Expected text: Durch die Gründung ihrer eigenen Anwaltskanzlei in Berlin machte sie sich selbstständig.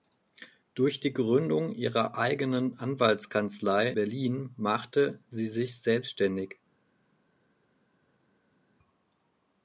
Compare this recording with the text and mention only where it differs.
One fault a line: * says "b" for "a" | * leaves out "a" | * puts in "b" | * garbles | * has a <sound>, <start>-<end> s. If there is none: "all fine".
* leaves out "in"